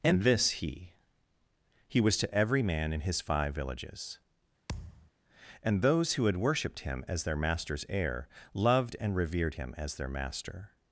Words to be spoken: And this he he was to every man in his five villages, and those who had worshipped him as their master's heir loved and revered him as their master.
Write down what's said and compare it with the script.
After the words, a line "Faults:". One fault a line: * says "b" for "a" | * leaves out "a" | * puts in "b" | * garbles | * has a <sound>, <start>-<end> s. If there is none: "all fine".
And this he he was to every man in his five villages, and those who had worshipped him as their master's heir loved and revered him as their master.
Faults:
* has a thud, 4.7-5.1 s